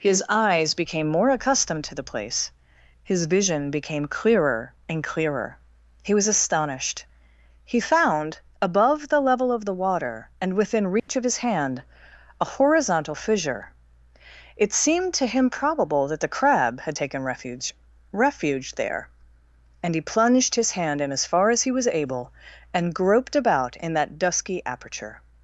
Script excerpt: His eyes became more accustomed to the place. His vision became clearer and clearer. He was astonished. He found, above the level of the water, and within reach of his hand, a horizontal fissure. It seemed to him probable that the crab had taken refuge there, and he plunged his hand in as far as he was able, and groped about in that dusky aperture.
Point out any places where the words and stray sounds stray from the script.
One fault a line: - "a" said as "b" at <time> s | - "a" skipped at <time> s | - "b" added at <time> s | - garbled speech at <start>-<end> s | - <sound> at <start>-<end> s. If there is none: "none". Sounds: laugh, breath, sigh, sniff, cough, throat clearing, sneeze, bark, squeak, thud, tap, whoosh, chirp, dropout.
- dropout at 11.0-11.1 s
- "refuge" added at 18.1 s